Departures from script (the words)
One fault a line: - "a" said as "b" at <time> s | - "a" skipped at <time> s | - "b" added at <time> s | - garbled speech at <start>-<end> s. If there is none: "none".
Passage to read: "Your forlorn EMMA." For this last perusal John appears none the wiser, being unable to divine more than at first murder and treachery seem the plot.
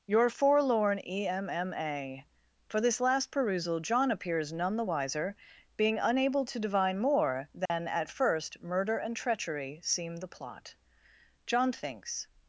- "John thinks" added at 11.5 s